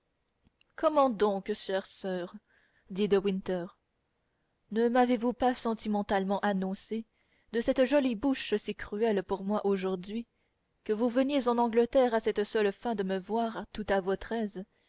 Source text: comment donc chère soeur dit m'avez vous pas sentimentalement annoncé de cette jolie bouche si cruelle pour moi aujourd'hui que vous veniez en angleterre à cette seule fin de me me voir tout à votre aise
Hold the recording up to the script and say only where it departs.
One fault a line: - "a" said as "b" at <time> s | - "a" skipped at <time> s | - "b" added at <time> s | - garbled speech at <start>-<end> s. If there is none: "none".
- "de winter ne" added at 3.1 s
- "me" skipped at 13.2 s